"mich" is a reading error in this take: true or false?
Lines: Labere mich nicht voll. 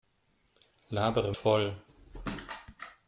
true